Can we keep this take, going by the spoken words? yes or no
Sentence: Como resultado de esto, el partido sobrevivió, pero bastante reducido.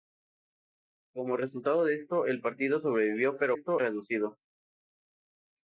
no